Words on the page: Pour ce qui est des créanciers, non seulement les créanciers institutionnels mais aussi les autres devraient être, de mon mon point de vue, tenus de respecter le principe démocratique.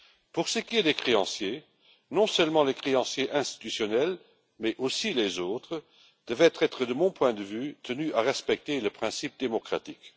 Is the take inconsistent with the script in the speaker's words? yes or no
yes